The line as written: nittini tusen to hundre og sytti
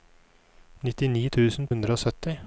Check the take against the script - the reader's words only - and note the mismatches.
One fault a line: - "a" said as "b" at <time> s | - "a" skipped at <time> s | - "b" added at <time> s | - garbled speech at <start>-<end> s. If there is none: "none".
- "to" skipped at 1.7 s